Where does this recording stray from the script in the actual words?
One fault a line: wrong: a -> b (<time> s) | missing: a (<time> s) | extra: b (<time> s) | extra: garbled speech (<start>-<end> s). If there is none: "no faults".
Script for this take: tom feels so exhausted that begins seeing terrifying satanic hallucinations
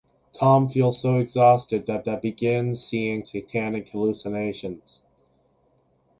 extra: that (2.0 s)
missing: terrifying (3.2 s)